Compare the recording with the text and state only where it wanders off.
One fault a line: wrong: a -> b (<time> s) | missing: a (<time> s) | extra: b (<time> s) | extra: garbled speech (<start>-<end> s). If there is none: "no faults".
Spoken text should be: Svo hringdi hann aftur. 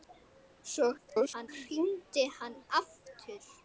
extra: garbled speech (1.0-1.5 s)